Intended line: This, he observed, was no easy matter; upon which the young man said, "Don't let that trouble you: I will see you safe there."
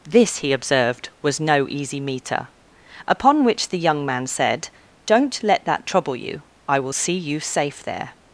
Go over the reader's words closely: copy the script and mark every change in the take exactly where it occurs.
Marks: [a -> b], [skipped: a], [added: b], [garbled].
This, he observed, was no easy [matter; -> meter] upon which the young man said, "Don't let that trouble you: I will see you safe there."